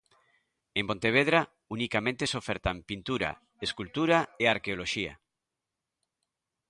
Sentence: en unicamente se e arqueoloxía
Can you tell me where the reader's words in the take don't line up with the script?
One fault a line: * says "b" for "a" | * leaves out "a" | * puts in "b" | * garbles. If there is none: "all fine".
* puts in "pontevedra"
* puts in "ofertan pintura escultura"